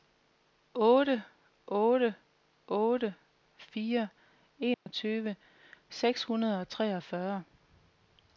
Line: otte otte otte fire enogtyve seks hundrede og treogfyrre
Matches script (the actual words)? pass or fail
pass